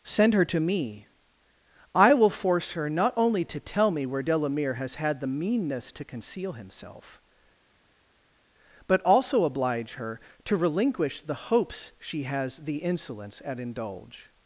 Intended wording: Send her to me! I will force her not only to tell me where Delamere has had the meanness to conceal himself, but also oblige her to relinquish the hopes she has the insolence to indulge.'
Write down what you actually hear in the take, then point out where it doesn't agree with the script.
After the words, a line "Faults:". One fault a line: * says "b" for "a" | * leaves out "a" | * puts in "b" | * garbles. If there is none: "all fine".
Send her to me! I will force her not only to tell me where Delamere has had the meanness to conceal himself, but also oblige her to relinquish the hopes she has the insolence at indulge.'
Faults:
* says "at" for "to"